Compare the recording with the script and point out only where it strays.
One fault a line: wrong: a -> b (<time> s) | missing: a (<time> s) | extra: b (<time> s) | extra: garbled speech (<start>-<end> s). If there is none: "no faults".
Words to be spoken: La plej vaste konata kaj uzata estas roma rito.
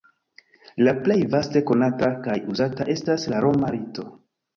extra: la (3.3 s)